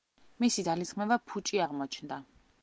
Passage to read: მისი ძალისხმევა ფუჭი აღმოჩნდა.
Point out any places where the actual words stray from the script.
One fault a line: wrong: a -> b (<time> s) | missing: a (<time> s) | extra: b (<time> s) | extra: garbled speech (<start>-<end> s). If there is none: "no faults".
no faults